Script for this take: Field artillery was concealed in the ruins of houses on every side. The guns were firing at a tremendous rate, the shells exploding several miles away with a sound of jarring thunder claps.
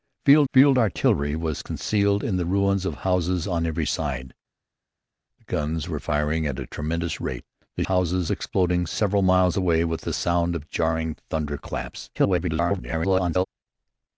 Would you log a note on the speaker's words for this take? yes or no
yes